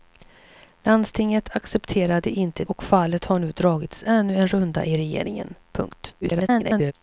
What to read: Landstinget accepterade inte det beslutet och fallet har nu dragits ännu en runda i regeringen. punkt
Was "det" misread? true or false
true